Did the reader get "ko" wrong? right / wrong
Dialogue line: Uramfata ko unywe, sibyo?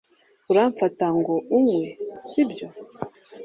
wrong